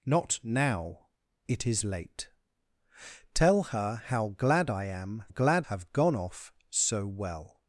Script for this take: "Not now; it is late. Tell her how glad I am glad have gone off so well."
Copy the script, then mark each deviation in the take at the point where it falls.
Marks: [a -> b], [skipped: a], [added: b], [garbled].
"Not now; it is late. Tell her how glad I am glad have gone off so well."